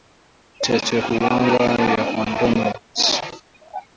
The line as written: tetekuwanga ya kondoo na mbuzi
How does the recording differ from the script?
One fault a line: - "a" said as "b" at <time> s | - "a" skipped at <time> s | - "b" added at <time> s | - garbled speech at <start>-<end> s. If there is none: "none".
none